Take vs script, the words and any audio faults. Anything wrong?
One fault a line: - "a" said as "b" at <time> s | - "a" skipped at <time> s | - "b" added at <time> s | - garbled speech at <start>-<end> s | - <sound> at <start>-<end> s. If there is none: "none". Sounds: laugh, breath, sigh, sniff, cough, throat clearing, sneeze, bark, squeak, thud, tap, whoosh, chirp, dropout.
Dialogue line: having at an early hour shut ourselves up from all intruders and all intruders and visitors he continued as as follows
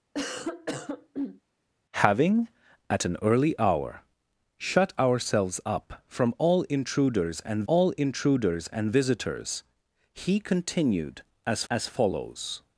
- cough at 0.1-1.4 s